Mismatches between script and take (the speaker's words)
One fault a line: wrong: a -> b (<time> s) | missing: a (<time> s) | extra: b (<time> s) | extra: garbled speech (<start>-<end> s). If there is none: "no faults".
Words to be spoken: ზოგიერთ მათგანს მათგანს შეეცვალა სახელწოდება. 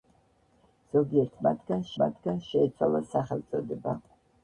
no faults